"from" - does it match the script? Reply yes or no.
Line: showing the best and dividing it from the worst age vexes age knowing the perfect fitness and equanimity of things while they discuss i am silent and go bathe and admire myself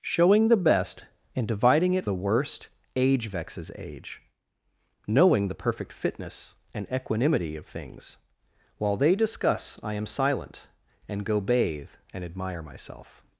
no